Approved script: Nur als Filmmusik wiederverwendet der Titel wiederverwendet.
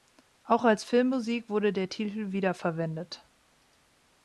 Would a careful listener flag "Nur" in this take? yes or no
yes